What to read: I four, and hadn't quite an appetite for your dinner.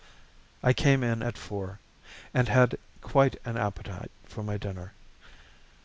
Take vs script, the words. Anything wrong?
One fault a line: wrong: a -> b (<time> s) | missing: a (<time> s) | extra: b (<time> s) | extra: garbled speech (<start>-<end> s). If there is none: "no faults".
extra: came in at (0.7 s)
wrong: hadn't -> had (2.5 s)
wrong: your -> my (4.4 s)